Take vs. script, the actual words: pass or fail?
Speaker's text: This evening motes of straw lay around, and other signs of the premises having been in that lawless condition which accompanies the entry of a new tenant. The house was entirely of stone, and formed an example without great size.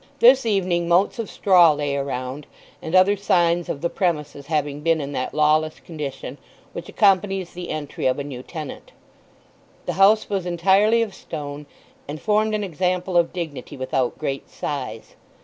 fail